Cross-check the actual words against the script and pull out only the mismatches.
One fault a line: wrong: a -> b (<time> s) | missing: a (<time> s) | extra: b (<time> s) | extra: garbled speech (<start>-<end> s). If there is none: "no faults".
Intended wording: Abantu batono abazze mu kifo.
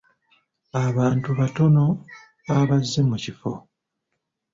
no faults